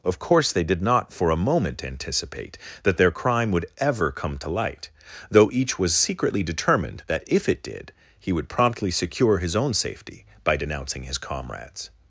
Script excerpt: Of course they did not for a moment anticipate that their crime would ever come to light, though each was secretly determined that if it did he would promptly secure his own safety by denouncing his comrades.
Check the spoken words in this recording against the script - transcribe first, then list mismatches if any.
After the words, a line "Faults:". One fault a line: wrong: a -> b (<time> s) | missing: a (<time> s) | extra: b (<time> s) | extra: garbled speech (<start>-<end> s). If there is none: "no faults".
Of course they did not for a moment anticipate that their crime would ever come to light, though each was secretly determined that if it did he would promptly secure his own safety by denouncing his comrades.
Faults:
no faults